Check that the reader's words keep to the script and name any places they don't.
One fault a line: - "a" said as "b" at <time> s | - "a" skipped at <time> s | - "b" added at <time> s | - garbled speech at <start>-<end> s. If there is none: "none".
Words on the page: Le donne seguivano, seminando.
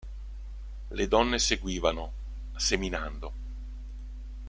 none